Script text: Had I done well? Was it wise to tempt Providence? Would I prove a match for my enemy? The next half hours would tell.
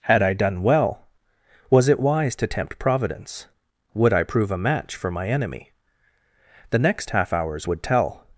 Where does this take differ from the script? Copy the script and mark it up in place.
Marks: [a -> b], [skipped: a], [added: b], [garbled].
Had I done well? Was it wise to tempt Providence? Would I prove a match for my enemy? The next half hours would tell.